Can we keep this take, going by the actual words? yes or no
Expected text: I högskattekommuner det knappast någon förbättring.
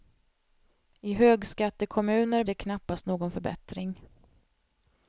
yes